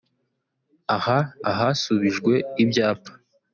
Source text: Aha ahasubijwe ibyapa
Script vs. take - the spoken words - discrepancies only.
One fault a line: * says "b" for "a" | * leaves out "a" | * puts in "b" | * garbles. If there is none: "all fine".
all fine